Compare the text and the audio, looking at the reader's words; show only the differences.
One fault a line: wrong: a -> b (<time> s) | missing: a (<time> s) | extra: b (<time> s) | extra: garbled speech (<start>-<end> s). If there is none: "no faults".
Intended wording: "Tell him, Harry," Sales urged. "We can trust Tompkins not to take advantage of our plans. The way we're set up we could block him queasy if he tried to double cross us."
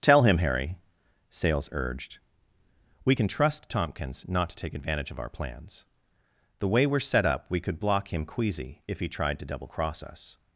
no faults